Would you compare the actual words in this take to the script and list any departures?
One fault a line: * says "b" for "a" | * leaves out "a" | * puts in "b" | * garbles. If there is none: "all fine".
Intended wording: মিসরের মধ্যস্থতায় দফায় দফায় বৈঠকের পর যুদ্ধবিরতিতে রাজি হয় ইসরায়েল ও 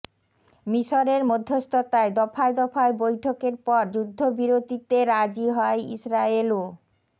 all fine